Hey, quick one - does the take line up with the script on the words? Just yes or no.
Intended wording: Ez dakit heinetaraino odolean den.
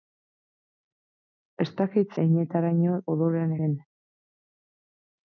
yes